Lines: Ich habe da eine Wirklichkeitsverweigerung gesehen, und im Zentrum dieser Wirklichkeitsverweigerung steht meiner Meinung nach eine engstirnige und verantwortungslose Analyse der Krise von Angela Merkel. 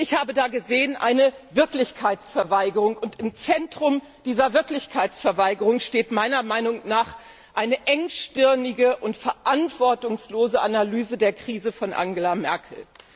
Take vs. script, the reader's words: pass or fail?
pass